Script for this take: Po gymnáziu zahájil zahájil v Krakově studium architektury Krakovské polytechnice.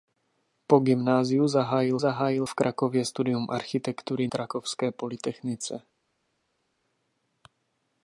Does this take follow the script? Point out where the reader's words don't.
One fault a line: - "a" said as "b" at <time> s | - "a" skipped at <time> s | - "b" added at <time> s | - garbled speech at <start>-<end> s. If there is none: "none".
none